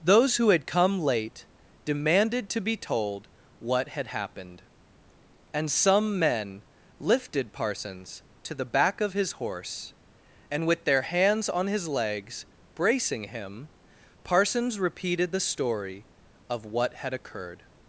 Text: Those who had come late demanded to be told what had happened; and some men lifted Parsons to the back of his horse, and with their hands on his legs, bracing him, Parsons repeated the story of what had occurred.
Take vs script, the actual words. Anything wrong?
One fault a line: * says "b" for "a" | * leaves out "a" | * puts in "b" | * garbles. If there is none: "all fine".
all fine